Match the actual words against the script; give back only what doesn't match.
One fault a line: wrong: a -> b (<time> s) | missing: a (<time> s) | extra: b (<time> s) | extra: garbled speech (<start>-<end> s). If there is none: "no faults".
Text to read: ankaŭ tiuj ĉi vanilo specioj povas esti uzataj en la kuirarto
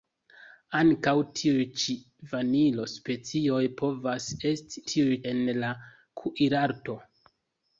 wrong: uzataj -> tiuj (4.9 s)